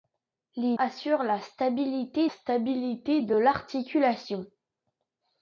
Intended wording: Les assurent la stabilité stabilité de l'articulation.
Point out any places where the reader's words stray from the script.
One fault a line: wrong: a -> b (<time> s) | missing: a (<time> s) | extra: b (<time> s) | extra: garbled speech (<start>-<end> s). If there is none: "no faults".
no faults